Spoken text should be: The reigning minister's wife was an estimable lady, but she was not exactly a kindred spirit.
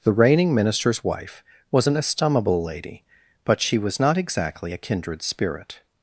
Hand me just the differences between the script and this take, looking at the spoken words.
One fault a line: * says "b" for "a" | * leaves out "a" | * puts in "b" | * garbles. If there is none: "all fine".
all fine